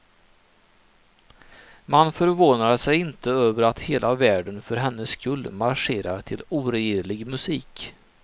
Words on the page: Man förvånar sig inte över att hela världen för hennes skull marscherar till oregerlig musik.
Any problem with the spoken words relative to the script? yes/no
no